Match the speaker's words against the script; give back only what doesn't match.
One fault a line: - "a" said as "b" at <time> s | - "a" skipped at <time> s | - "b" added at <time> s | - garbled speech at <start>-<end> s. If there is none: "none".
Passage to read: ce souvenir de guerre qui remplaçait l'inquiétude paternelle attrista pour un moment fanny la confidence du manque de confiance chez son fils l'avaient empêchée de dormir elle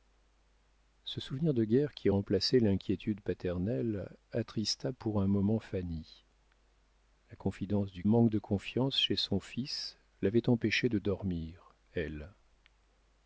none